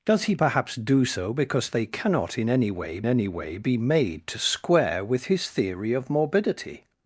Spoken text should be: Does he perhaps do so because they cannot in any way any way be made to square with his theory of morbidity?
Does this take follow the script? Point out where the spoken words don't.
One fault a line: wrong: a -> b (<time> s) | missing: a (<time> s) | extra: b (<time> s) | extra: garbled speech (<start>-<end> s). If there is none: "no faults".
no faults